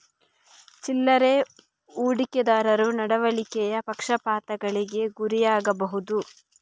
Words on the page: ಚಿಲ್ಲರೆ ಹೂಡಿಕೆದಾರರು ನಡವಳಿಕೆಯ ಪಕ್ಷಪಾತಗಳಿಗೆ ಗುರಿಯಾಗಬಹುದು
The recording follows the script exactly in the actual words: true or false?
true